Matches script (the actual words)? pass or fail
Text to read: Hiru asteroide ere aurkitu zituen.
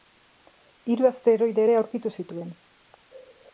pass